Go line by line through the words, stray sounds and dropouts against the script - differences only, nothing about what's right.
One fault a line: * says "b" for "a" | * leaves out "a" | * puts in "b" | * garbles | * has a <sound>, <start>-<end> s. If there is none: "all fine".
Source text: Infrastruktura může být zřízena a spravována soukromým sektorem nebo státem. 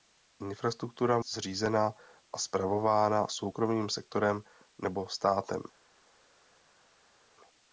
* leaves out "může být"